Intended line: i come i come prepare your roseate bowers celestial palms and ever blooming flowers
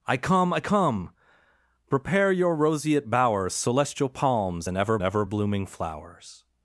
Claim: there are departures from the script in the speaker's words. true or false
true